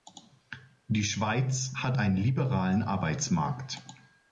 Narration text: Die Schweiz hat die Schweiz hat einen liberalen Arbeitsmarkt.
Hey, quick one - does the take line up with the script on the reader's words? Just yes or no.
no